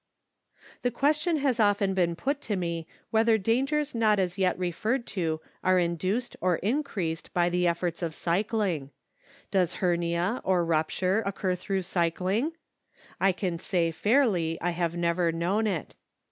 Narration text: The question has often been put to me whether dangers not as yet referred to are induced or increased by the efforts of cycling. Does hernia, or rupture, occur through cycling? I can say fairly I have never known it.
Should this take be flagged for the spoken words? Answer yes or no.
no